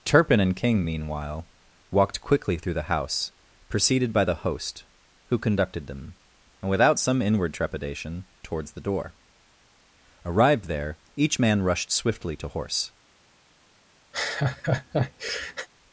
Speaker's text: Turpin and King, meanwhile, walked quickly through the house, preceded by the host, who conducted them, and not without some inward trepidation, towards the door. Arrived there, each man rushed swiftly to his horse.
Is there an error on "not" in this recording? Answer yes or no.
yes